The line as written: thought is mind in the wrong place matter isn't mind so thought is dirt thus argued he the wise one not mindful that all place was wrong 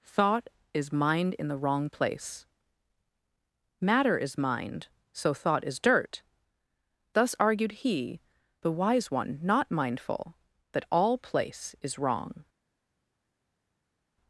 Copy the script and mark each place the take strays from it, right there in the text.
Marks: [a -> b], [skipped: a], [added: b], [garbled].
thought is mind in the wrong place matter [isn't -> is] mind so thought is dirt thus argued he the wise one not mindful that all place [was -> is] wrong